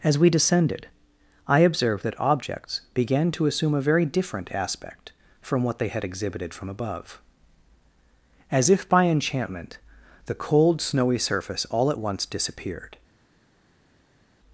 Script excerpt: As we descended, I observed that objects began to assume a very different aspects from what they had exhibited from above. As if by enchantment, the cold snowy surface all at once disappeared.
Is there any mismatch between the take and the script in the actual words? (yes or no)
yes